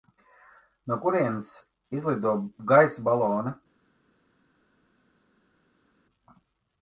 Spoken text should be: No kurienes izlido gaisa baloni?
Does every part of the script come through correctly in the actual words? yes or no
yes